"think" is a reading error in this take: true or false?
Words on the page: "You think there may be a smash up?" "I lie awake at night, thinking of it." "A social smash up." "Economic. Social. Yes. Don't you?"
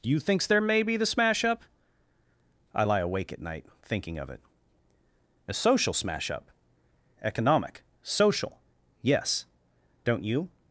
true